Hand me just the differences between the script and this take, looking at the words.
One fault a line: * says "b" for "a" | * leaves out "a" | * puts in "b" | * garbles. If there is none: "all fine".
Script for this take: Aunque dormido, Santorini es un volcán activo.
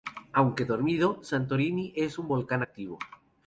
all fine